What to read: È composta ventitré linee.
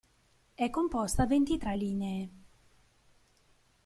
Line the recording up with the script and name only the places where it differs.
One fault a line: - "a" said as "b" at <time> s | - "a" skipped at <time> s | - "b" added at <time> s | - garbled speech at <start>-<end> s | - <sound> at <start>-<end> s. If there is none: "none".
none